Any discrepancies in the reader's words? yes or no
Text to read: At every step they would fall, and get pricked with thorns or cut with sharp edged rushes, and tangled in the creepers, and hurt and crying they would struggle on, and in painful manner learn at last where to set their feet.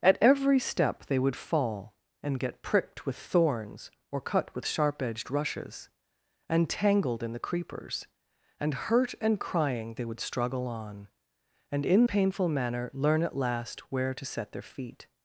no